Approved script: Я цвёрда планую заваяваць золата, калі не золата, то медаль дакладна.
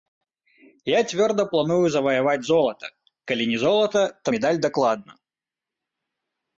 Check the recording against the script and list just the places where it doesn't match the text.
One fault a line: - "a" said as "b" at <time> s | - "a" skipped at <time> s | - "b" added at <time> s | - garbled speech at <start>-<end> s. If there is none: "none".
none